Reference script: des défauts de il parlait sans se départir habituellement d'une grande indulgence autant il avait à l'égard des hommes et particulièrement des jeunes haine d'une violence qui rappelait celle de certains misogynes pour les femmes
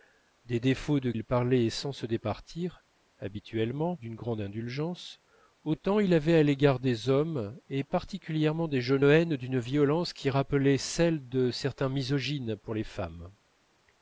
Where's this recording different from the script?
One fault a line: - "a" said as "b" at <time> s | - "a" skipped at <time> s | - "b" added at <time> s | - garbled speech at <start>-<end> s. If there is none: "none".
none